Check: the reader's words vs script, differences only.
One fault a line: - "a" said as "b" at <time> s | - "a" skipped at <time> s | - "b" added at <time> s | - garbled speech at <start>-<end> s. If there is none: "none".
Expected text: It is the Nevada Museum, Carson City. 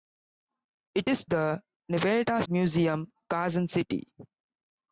none